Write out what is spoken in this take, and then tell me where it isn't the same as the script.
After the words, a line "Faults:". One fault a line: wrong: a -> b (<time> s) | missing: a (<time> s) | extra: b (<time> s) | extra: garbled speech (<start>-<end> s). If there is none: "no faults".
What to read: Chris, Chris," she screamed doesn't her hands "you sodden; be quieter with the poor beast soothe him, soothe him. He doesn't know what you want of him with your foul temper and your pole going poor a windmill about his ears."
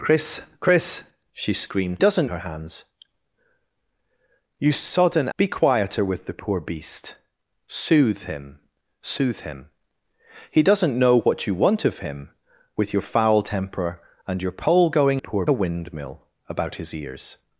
Chris, Chris," she screamed doesn't her hands "you sodden; be quieter with the poor beast soothe him, soothe him. He doesn't know what you want of him with your foul temper and your pole going poor a windmill about his ears."
Faults:
no faults